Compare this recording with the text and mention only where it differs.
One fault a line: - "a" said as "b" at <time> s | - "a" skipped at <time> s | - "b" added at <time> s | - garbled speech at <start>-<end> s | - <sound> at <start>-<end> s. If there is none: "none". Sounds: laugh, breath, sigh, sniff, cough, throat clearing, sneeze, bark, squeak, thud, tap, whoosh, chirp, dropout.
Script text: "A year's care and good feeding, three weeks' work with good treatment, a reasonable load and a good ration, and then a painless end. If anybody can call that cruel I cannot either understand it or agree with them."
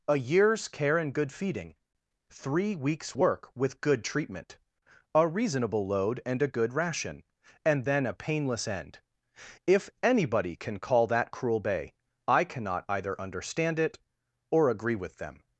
- "bay" added at 11.6 s